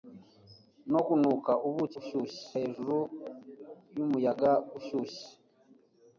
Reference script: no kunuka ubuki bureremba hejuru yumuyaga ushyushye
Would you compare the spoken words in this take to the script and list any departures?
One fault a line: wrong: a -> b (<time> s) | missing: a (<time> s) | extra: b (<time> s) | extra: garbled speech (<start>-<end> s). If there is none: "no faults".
wrong: bureremba -> ushyushye (2.0 s)